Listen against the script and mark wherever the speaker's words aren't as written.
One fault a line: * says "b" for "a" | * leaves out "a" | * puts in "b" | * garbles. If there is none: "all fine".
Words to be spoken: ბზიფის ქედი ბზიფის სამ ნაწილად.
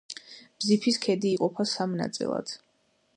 * says "იყოფა" for "ბზიფის"